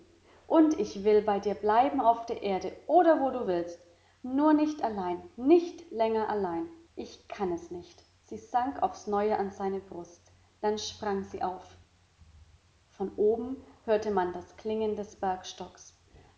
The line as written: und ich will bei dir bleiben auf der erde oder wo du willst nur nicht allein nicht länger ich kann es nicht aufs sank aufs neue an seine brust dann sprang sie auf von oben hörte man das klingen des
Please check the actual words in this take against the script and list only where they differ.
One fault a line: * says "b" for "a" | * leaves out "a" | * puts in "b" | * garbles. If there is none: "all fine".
* puts in "allein"
* says "sie" for "aufs"